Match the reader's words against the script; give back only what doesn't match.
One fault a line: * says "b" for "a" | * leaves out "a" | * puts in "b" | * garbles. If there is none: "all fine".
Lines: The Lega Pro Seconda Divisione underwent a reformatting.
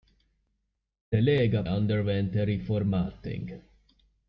* leaves out "Pro Seconda Divisione"